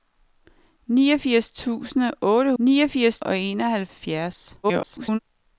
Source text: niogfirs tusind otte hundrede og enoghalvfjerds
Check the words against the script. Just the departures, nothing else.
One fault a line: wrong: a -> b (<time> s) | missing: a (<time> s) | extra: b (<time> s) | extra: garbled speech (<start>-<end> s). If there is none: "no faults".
wrong: hundrede -> niogfirs (2.6 s)
extra: garbled speech (4.6-5.2 s)